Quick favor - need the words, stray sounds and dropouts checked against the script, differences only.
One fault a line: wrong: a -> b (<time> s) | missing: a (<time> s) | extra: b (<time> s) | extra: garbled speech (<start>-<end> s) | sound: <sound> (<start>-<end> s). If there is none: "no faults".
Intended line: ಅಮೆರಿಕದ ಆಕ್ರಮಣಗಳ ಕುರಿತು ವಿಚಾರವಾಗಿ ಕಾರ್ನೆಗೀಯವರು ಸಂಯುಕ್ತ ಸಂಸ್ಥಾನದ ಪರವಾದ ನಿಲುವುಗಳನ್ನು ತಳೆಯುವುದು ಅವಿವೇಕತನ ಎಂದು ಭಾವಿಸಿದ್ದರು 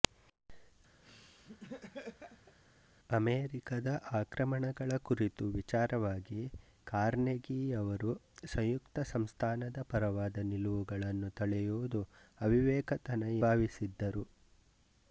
sound: laugh (1.0-2.6 s)
missing: ಎಂದು (13.2 s)